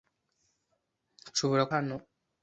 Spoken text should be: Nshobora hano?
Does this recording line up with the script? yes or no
yes